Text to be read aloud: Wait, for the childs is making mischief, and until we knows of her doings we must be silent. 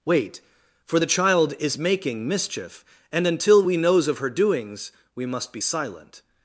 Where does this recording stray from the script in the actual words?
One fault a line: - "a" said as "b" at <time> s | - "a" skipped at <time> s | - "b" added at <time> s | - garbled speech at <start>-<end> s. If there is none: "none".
- "childs" said as "child" at 1.1 s